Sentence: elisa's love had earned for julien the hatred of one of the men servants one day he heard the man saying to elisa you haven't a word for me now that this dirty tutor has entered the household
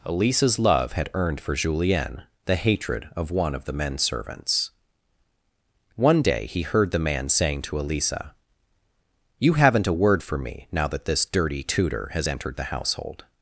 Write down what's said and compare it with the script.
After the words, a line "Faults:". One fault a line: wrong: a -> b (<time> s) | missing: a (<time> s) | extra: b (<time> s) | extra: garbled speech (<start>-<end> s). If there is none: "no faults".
elisa's love had earned for julien the hatred of one of the men servants one day he heard the man saying to elisa you haven't a word for me now that this dirty tutor has entered the household
Faults:
no faults